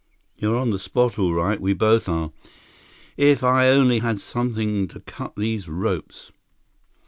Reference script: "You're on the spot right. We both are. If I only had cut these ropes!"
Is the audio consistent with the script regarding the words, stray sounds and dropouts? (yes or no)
no